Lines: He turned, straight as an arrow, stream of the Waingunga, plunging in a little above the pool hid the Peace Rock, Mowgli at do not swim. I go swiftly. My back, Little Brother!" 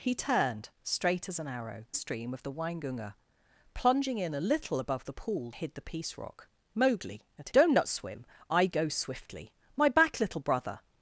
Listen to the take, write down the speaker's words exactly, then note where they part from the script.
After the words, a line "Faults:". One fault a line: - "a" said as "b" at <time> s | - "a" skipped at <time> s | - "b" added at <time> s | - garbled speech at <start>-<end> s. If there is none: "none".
He turned, straight as an arrow, stream of the Waingunga, plunging in a little above the pool hid the Peace Rock, Mowgli at do not swim. I go swiftly. My back, Little Brother!"
Faults:
none